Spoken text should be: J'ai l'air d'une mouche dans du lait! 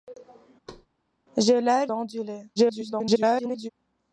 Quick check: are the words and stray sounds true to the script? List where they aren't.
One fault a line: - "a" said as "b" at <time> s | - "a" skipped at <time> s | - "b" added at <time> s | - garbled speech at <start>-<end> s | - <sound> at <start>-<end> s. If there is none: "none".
- thud at 0.7-0.9 s
- "d'une mouche" skipped at 1.9 s
- garbled speech at 2.6-3.7 s